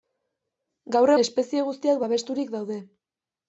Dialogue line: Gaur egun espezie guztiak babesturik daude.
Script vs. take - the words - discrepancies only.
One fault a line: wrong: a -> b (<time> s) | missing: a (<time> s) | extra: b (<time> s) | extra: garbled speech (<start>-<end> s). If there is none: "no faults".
missing: egun (1.1 s)